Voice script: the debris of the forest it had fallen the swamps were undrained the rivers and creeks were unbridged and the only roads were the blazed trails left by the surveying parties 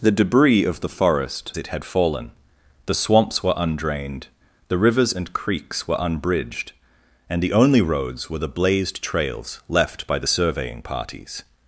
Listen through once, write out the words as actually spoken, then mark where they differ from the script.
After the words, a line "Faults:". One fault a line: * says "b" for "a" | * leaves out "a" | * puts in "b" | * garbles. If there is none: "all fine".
the debris of the forest it had fallen the swamps were undrained the rivers and creeks were unbridged and the only roads were the blazed trails left by the surveying parties
Faults:
all fine